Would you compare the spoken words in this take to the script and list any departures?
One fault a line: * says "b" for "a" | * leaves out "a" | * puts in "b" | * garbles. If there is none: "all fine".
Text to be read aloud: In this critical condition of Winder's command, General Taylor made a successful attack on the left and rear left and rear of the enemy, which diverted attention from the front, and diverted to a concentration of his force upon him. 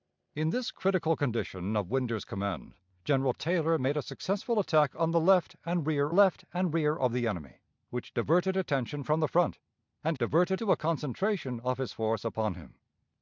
all fine